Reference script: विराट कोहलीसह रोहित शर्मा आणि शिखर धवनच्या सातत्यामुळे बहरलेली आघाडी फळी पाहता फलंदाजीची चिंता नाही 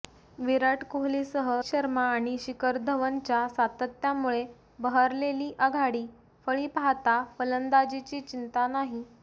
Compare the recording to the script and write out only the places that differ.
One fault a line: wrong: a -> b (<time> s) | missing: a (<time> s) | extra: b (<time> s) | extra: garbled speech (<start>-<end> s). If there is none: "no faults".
missing: रोहित (1.5 s)